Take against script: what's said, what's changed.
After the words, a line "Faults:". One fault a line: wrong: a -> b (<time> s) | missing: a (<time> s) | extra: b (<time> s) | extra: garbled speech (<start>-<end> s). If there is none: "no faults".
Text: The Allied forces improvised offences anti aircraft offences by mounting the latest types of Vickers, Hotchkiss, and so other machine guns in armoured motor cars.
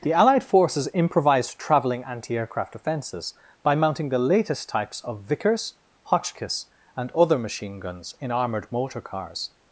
The Allied forces improvised travelling anti aircraft offences by mounting the latest types of Vickers, Hotchkiss, and other machine guns in armoured motor cars.
Faults:
wrong: offences -> travelling (1.6 s)
missing: so (7.1 s)